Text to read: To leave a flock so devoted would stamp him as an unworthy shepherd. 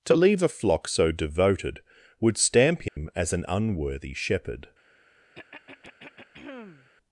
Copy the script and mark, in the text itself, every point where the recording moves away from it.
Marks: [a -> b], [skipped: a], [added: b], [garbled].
To leave a flock so devoted would stamp him as an unworthy shepherd.